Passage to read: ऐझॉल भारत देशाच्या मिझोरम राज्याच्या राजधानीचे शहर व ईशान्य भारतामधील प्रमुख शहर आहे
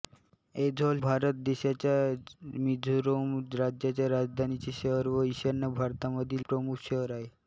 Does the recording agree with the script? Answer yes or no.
yes